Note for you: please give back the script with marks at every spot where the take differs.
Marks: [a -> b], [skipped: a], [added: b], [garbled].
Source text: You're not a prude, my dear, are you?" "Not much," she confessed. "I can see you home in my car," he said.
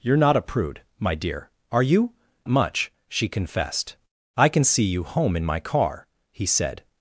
You're not a prude, my dear, are you?" [skipped: "Not] much," she confessed. "I can see you home in my car," he said.